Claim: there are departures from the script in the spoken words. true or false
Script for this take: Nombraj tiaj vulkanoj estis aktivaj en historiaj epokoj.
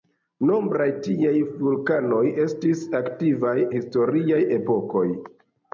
true